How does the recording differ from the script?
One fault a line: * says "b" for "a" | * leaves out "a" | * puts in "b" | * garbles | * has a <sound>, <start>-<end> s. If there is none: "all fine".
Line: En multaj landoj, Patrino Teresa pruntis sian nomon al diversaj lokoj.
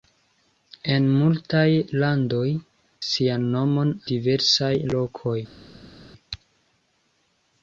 * leaves out "Patrino Teresa pruntis"
* leaves out "al"